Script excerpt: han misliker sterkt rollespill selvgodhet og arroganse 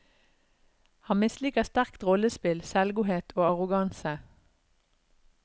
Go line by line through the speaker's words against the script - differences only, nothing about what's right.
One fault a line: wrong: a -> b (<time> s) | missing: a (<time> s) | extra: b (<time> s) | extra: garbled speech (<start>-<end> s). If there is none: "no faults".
no faults